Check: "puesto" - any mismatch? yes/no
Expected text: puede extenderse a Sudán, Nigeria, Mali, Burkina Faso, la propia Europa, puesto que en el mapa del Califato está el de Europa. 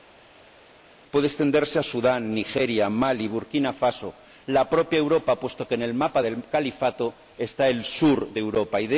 no